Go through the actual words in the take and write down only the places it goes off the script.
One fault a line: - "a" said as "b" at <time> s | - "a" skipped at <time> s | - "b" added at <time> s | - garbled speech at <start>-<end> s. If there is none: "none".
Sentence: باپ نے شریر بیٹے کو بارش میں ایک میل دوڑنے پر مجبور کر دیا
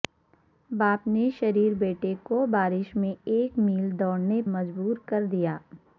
- "پر" skipped at 4.4 s